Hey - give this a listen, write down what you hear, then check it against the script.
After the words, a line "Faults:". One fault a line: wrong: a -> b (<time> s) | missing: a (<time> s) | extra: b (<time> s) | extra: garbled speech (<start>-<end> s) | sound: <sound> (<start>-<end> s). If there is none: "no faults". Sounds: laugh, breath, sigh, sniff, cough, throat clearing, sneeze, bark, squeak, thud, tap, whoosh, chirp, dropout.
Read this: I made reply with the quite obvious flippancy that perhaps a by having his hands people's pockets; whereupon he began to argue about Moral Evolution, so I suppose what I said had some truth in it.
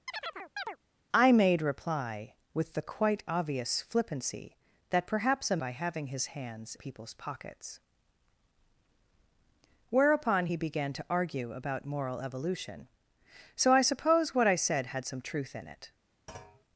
I made reply with the quite obvious flippancy that perhaps a by having his hands people's pockets; whereupon he began to argue about Moral Evolution, so I suppose what I said had some truth in it.
Faults:
sound: chirp (0.1-0.8 s)
sound: thud (16.3-16.7 s)